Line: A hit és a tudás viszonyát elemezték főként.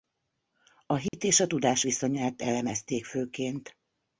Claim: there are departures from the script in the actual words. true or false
false